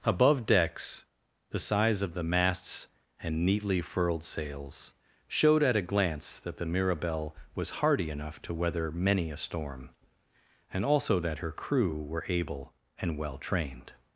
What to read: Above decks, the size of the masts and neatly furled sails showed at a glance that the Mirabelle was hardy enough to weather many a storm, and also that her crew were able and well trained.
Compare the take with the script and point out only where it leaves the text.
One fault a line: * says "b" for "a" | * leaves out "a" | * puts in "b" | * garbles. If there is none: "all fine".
all fine